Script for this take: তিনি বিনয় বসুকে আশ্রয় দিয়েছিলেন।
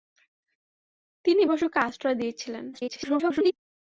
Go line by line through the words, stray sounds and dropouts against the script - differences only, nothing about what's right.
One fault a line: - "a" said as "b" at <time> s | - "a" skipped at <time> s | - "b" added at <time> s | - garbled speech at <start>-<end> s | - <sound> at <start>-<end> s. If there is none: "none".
- "বিনয়" skipped at 1.4 s
- garbled speech at 2.7-3.5 s